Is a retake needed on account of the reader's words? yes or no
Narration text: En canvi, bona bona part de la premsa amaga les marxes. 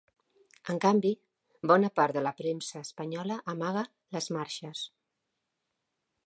yes